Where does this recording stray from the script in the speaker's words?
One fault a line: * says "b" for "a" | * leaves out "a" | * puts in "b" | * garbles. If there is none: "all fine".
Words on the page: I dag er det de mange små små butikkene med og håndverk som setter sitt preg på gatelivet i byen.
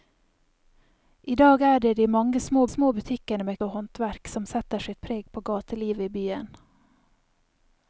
all fine